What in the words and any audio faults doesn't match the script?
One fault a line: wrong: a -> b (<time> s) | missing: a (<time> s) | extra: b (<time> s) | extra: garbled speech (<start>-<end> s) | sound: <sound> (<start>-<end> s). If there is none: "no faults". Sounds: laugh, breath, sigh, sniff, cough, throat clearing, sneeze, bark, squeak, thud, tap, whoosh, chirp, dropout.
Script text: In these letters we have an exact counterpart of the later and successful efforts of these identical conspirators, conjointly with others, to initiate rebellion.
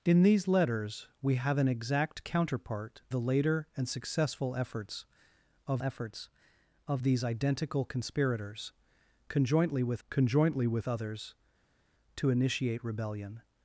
missing: of (3.0 s)
extra: efforts of (5.8 s)
extra: conjointly with (10.1 s)